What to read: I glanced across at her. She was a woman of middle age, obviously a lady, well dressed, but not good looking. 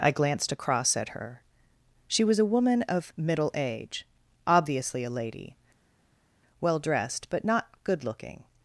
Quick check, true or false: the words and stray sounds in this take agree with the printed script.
true